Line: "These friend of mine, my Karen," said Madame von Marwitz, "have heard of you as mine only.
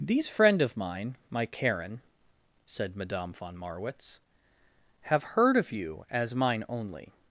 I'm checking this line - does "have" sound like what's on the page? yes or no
yes